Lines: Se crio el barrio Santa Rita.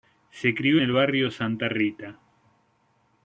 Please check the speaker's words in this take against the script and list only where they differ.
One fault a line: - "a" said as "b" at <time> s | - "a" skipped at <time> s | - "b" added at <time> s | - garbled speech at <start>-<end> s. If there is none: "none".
none